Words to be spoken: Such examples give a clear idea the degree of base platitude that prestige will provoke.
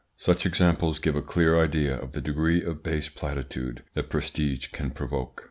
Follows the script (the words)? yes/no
no